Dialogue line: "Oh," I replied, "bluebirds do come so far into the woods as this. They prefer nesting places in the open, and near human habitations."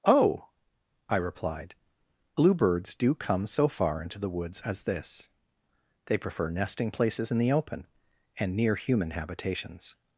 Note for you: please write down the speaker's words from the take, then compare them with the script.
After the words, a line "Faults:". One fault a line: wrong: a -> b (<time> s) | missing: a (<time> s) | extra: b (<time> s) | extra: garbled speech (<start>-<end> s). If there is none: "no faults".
"Oh," I replied, "bluebirds do come so far into the woods as this. They prefer nesting places in the open, and near human habitations."
Faults:
no faults